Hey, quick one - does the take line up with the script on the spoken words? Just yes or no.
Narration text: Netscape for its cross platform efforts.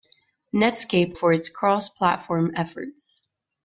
yes